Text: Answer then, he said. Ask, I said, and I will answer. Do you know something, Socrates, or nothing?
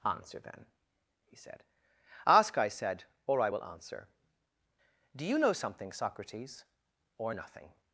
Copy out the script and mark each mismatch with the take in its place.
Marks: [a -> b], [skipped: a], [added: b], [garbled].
Answer then, he said. Ask, I said, [and -> or] I will answer. Do you know something, Socrates, or nothing?